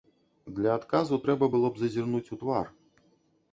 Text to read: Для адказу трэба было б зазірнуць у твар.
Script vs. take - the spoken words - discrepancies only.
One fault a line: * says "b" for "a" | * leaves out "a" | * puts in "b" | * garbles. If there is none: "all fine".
all fine